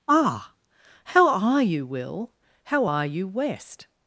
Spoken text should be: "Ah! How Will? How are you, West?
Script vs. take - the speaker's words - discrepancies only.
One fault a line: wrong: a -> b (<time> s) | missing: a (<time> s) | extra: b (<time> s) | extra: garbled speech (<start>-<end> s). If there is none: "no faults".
extra: are you (1.3 s)